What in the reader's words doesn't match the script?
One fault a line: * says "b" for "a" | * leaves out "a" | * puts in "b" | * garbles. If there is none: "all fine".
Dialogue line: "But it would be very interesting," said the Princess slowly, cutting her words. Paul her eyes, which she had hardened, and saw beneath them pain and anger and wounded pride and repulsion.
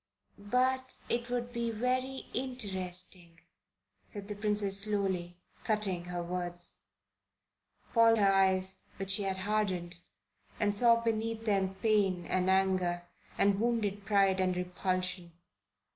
all fine